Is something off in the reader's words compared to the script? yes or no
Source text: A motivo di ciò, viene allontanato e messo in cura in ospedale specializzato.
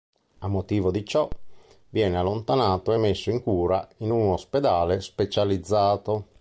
yes